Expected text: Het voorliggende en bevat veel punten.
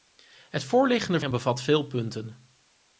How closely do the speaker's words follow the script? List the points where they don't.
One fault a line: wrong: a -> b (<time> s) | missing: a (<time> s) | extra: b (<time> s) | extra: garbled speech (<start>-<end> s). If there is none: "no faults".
no faults